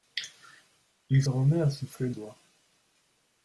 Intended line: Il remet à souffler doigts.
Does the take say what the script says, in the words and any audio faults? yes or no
yes